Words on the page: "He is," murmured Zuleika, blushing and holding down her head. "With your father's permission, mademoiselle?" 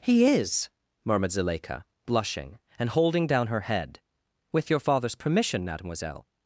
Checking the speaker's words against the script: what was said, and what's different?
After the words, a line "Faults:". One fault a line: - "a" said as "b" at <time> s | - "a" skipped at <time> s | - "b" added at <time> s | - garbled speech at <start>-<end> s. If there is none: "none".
"He is," murmured Zuleika, blushing and holding down her head. "With your father's permission, mademoiselle?"
Faults:
none